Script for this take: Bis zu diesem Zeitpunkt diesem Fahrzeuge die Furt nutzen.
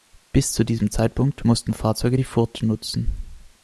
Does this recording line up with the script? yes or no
no